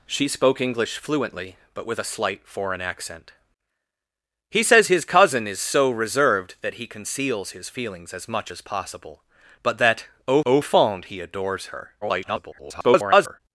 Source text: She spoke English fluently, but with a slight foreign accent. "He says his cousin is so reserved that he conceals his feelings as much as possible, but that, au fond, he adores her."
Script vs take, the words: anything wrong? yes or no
yes